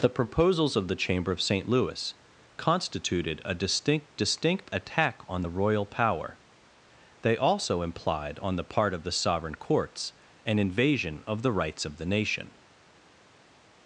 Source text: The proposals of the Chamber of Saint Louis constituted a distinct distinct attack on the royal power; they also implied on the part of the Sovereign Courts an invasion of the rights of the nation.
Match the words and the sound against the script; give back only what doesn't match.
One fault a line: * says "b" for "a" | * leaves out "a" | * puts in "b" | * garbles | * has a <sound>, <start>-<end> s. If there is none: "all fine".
all fine